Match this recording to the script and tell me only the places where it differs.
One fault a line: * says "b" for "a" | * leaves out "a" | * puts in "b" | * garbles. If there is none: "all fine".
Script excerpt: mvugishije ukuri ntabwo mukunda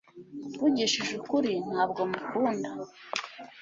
all fine